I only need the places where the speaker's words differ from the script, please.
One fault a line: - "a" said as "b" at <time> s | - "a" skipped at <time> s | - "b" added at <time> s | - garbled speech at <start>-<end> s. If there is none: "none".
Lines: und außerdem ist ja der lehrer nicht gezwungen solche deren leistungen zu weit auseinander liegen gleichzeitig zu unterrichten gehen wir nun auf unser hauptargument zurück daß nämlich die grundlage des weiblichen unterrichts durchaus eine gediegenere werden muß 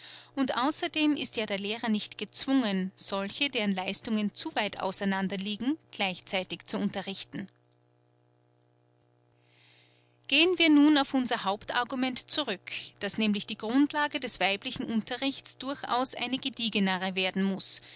none